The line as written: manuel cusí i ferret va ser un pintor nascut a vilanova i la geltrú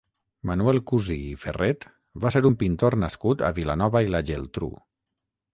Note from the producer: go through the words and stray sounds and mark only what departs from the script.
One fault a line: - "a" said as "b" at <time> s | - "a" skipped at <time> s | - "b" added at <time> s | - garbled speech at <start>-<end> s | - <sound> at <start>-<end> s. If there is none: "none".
none